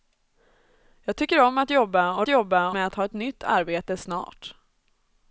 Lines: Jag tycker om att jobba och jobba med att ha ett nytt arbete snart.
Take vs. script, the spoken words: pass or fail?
pass